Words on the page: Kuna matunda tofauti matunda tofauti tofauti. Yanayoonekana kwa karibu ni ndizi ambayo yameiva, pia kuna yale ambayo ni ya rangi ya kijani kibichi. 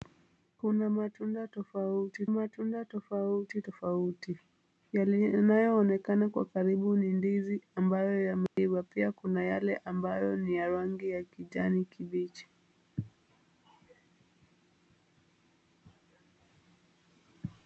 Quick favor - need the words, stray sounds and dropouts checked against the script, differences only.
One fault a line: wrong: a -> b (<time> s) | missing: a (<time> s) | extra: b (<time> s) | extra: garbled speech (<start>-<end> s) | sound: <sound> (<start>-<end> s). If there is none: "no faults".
sound: dropout (8.5-8.6 s)